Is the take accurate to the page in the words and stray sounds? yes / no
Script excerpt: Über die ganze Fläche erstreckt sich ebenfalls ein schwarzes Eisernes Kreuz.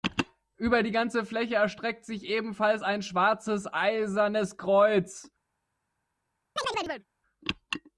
no